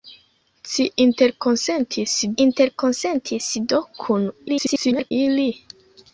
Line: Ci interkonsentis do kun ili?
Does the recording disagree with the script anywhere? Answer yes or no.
yes